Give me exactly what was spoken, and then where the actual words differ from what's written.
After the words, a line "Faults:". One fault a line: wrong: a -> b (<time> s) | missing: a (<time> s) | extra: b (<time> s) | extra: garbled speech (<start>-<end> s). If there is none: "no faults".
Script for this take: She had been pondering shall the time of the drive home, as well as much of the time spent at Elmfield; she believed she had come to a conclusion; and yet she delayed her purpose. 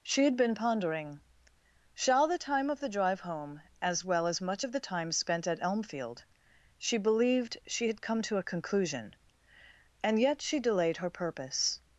She had been pondering shall the time of the drive home, as well as much of the time spent at Elmfield; she believed she had come to a conclusion; and yet she delayed her purpose.
Faults:
no faults